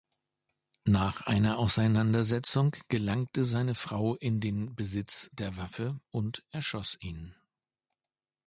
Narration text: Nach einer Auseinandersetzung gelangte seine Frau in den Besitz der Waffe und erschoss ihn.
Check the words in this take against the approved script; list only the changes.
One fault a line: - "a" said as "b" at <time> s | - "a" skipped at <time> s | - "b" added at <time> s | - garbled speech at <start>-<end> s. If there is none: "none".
none